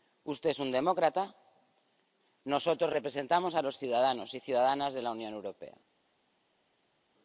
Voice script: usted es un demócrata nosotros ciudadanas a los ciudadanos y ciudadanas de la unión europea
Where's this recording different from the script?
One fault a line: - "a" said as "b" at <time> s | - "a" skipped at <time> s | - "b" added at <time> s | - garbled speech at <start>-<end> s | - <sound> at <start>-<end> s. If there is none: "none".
- "ciudadanas" said as "representamos" at 2.9 s